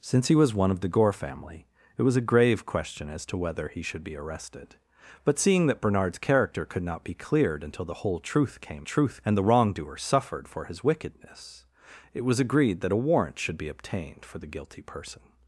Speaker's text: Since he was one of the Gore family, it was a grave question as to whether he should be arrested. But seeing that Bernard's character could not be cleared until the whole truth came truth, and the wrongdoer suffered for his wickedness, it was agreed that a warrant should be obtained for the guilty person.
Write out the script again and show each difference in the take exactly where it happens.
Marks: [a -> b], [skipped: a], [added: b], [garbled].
Since he was one of the Gore family, it was a grave question as to whether he should be arrested. But seeing that Bernard's character could not be cleared until the whole truth came truth, and the wrongdoer suffered for his wickedness, it was agreed that a warrant should be obtained for the guilty person.